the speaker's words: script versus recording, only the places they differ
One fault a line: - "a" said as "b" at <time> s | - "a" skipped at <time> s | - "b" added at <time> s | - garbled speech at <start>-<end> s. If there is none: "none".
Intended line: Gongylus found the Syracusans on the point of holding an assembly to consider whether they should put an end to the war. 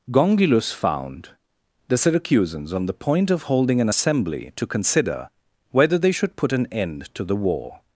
none